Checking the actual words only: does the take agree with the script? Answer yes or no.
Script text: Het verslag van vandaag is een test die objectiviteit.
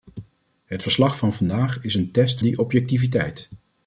yes